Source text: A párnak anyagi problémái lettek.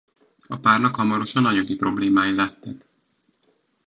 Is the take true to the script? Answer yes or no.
no